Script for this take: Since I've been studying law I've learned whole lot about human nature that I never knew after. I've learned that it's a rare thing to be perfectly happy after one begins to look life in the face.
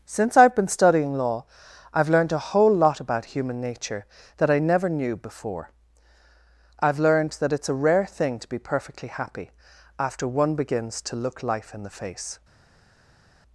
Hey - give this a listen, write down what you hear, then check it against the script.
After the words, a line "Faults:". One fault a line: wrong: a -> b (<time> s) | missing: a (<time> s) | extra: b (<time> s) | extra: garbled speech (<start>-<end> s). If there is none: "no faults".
Since I've been studying law I've learned a whole lot about human nature that I never knew before. I've learned that it's a rare thing to be perfectly happy after one begins to look life in the face.
Faults:
extra: a (2.3 s)
wrong: after -> before (5.2 s)